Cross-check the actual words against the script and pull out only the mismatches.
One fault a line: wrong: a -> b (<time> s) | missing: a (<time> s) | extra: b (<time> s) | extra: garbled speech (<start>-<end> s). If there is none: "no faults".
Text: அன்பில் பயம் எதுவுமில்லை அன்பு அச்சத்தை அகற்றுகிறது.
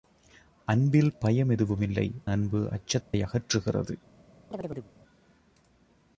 no faults